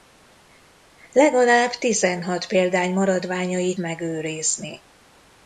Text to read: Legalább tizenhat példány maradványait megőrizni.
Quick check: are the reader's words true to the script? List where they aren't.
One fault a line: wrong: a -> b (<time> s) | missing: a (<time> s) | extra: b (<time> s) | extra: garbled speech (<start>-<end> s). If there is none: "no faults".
no faults